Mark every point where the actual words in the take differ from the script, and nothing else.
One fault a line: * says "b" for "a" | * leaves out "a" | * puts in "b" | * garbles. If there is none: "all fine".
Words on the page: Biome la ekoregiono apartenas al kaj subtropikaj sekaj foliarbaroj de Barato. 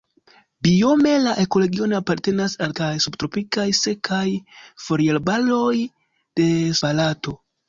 all fine